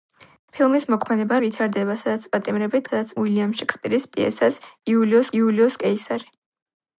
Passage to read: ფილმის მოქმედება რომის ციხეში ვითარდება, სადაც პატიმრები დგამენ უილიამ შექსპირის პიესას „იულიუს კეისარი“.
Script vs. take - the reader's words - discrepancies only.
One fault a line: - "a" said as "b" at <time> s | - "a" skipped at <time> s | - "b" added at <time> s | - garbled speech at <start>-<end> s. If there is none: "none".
- "რომის ციხეში" skipped at 1.4 s
- "დგამენ" said as "სადაც" at 2.9 s
- "იულიუს" added at 5.4 s